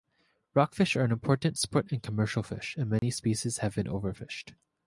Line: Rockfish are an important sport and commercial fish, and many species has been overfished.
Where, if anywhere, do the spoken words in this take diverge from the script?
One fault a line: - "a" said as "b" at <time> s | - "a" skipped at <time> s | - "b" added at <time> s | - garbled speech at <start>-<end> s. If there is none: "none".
- "has" said as "have" at 3.6 s